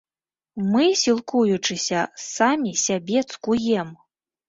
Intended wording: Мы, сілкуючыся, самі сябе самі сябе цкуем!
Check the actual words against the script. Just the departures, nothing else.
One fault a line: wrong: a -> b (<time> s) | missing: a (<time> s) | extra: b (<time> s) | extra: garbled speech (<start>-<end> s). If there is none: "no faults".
missing: самі сябе (3.2 s)